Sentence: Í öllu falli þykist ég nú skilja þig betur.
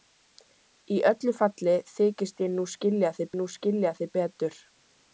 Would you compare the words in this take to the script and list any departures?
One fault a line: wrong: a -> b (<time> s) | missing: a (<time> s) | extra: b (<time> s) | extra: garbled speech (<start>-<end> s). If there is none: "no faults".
extra: nú skilja þig (3.4 s)